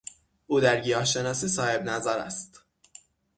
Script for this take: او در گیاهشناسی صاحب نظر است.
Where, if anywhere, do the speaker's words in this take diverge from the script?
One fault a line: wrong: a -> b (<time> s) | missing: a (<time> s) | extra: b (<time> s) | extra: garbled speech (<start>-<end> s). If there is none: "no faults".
no faults